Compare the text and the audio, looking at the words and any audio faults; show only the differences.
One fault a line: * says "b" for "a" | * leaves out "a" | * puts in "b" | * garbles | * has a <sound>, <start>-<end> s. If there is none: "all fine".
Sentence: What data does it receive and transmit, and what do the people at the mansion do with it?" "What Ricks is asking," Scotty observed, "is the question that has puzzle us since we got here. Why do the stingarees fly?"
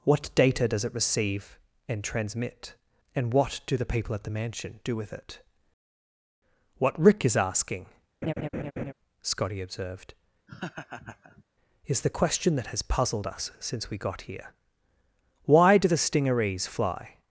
* says "Rick" for "Ricks"
* has a laugh, 8.2-8.9 s
* has a laugh, 10.5-11.4 s
* says "puzzled" for "puzzle"